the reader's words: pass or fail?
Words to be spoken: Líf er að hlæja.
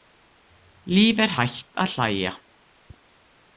fail